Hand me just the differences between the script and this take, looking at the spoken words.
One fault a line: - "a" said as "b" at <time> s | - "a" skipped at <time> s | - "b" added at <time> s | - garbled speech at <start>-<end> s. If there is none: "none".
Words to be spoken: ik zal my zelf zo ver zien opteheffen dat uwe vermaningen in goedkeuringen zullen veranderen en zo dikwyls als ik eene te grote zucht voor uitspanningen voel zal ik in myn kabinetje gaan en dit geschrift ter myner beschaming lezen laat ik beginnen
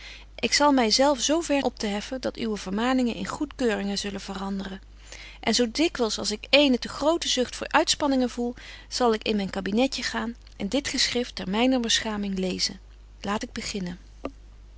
- "zien" skipped at 1.6 s